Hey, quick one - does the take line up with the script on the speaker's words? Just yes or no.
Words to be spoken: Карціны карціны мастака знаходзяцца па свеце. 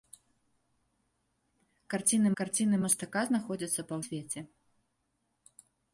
yes